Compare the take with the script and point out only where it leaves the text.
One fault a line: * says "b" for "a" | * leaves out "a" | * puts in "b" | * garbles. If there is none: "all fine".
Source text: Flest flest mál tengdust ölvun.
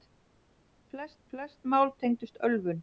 all fine